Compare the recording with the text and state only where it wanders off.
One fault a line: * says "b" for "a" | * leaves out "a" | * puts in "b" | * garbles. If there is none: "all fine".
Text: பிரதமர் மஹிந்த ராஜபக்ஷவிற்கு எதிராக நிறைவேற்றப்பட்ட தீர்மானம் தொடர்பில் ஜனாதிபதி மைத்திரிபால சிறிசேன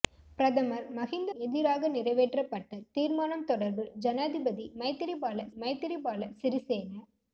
* leaves out "ராஜபக்ஷவிற்கு"
* puts in "மைத்திரிபால"